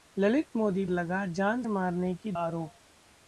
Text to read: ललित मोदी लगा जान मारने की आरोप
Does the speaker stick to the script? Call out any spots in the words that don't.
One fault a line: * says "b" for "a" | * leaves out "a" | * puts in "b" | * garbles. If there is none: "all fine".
all fine